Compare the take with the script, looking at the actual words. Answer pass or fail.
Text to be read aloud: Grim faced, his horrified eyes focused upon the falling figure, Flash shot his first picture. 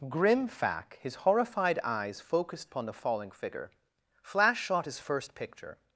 fail